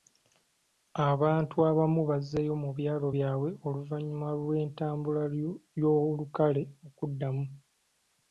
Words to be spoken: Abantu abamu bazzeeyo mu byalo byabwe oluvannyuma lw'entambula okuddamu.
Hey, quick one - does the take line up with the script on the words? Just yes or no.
no